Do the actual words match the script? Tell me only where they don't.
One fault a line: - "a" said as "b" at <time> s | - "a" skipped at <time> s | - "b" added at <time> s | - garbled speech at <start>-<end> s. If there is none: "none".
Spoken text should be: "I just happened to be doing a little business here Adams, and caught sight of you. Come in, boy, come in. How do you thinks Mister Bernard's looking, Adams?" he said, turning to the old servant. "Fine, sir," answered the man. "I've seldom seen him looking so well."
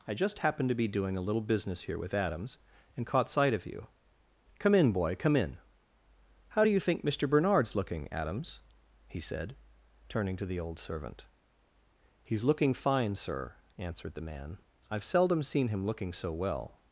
- "with" added at 2.0 s
- "thinks" said as "think" at 6.8 s
- "He's looking" added at 12.2 s